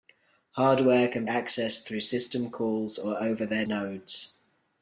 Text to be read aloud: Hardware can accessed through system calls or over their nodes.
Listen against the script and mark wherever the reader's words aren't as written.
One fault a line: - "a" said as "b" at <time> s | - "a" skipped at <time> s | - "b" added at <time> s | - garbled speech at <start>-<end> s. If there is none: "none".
none